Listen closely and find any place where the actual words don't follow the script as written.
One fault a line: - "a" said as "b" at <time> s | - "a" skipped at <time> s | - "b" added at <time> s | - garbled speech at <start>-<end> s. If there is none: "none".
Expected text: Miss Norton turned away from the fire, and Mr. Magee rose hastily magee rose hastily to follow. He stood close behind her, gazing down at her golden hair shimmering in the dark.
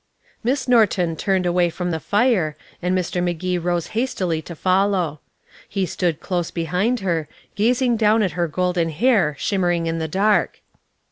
- "magee rose hastily" skipped at 4.4 s